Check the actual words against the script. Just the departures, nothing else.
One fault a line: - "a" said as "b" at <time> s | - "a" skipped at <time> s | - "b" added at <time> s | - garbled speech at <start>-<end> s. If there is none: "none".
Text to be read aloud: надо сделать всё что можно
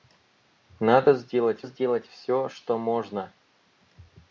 - "сделать" added at 1.6 s